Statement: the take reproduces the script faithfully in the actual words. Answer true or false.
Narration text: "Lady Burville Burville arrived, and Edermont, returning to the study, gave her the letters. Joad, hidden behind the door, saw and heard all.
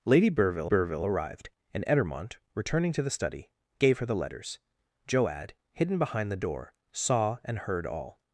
true